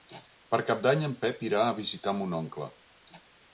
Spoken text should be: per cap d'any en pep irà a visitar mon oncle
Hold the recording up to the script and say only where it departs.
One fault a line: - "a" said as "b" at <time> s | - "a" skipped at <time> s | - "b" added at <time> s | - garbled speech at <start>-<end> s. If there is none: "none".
none